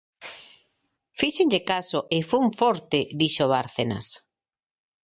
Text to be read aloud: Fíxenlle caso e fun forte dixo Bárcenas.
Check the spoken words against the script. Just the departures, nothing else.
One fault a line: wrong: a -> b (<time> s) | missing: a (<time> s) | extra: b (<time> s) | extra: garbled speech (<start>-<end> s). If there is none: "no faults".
no faults